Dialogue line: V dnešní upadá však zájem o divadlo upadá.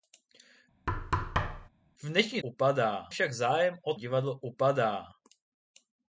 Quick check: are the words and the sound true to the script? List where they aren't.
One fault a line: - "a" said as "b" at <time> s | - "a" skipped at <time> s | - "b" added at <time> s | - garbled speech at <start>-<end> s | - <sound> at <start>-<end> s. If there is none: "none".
- thud at 0.9-1.7 s